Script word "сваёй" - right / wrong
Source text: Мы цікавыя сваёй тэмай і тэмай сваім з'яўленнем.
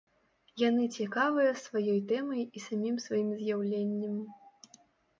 right